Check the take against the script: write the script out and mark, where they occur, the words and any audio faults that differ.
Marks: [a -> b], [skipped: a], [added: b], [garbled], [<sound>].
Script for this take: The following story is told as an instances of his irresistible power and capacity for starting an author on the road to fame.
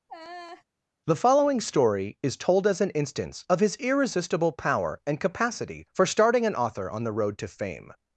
[laugh] The following story is told as an [instances -> instance] of his irresistible power and capacity for starting an author on the road to fame.